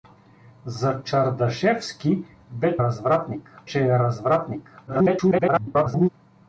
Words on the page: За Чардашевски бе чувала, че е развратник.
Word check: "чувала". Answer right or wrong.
wrong